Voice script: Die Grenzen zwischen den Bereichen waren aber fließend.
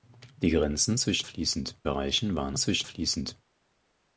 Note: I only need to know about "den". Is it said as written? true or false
false